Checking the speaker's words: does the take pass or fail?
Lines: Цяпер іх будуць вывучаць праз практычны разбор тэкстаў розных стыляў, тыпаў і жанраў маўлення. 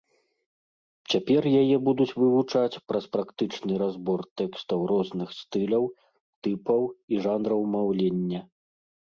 fail